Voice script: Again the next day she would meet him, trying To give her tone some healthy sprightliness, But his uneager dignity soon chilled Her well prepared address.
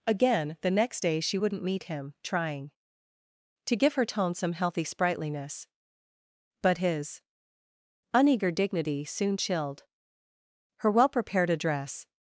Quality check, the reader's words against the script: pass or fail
fail